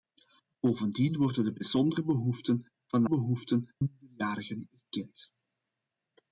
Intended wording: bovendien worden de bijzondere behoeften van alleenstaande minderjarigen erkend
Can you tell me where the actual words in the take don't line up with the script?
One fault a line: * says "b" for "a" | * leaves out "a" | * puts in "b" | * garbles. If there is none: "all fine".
* says "behoeften" for "alleenstaande"